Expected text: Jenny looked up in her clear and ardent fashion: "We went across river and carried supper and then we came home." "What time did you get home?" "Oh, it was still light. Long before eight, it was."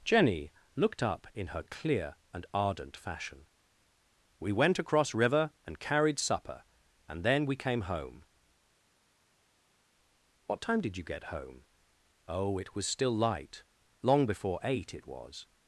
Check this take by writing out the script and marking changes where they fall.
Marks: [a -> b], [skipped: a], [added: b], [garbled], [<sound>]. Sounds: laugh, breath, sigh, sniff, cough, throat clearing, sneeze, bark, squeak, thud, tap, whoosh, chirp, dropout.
Jenny looked up in her clear and ardent fashion: "We went across river and carried supper and then we came home." "What time did you get home?" "Oh, it was still light. Long before eight, it was."